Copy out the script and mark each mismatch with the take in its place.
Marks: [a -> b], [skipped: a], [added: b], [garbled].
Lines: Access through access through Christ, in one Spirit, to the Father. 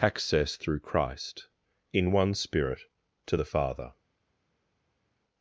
Access through [skipped: access through] Christ, in one Spirit, to the Father.